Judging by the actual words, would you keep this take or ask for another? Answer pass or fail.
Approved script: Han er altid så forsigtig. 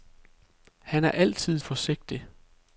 fail